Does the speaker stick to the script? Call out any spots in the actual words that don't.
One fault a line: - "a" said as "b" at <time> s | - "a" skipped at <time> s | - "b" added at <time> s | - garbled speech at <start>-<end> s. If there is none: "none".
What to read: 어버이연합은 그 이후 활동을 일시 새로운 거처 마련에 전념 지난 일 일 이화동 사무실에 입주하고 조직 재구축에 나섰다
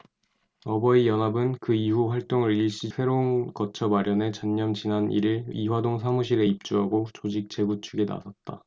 none